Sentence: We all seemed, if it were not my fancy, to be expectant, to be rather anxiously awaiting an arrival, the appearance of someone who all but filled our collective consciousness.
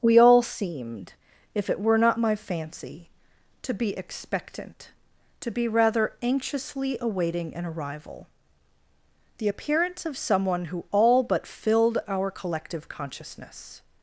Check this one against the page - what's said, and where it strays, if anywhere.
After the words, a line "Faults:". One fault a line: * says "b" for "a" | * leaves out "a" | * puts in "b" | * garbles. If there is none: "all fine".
We all seemed, if it were not my fancy, to be expectant, to be rather anxiously awaiting an arrival, the appearance of someone who all but filled our collective consciousness.
Faults:
all fine